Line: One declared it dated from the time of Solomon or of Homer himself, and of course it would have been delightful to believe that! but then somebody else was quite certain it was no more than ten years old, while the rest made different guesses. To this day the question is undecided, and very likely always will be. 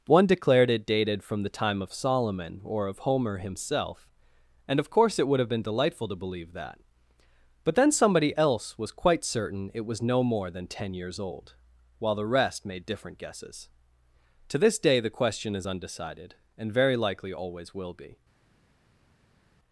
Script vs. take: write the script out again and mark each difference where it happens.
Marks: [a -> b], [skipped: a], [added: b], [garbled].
One declared it dated from the time of Solomon or of Homer himself, and of course it would have been delightful to believe that! but then somebody else was quite certain it was no more than ten years old, while the rest made different guesses. To this day the question is undecided, and very likely always will be.